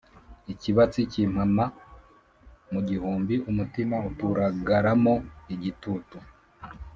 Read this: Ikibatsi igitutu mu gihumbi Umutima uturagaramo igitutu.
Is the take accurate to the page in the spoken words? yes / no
no